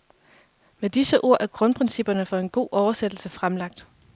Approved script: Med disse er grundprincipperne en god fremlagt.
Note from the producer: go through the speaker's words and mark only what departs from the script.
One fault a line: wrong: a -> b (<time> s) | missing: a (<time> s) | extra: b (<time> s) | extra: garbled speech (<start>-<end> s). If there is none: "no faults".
extra: ord (1.2 s)
extra: for (2.2 s)
extra: oversættelse (2.7 s)